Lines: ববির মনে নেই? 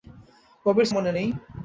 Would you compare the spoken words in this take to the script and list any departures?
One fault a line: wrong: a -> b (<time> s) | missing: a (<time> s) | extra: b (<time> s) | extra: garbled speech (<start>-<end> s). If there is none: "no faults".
no faults